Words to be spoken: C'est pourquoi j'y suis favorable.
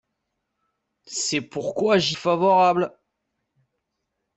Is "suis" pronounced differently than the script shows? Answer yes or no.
yes